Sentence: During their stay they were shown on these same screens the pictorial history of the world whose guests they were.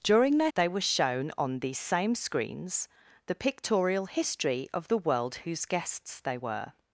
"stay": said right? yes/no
no